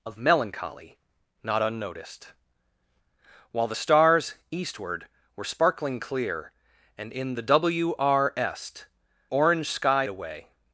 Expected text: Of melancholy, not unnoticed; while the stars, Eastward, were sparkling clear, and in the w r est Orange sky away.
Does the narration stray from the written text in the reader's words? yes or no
no